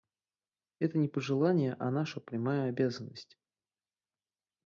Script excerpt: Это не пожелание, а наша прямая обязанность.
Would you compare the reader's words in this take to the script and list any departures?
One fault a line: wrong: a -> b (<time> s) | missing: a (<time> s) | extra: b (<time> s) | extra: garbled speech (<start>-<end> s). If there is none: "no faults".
no faults